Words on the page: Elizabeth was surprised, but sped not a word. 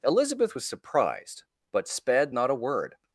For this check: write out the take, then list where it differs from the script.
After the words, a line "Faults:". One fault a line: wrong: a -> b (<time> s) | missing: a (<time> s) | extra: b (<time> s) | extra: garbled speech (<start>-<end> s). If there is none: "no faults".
Elizabeth was surprised, but sped not a word.
Faults:
no faults